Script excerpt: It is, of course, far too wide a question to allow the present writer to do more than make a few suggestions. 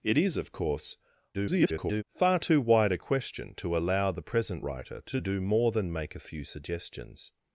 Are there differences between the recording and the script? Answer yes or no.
yes